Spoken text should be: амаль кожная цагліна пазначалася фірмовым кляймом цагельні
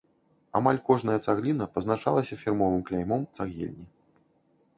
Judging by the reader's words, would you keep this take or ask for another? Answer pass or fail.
pass